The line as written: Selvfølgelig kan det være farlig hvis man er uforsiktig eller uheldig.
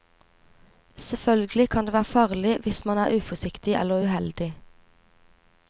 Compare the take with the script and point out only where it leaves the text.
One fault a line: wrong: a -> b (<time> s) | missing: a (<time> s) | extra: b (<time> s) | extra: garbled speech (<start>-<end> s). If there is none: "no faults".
no faults